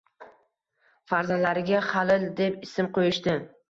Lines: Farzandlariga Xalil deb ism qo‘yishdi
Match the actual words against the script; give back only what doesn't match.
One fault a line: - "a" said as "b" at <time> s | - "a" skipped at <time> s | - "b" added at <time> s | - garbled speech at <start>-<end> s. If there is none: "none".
none